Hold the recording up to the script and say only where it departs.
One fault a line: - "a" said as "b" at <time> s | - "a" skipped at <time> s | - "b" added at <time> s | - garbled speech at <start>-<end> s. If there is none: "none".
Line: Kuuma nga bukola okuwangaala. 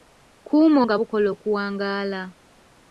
none